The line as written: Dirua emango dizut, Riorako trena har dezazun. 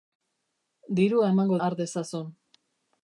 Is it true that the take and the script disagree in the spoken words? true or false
true